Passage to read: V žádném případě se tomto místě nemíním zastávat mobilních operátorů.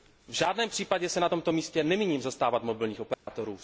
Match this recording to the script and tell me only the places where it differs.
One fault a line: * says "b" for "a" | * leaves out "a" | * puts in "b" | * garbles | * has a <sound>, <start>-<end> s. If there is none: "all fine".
* puts in "na"
* has a dropout, 3.1-3.3 s